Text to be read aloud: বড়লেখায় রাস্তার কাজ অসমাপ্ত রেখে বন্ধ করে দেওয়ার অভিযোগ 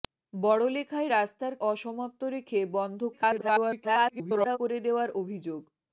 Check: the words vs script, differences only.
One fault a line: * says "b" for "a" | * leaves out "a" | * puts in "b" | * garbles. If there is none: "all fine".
* leaves out "কাজ"
* garbles